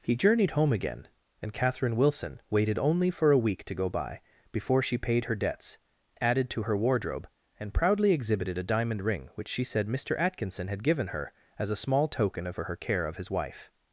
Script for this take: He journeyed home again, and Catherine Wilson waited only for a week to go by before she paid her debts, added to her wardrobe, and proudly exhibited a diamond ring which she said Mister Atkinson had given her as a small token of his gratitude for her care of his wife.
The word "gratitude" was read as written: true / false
false